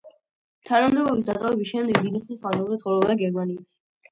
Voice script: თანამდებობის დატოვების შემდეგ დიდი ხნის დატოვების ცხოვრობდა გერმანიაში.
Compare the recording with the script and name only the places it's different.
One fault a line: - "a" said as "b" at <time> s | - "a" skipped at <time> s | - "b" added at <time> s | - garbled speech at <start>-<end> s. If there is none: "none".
- "დატოვების" said as "მანძილზე" at 2.5 s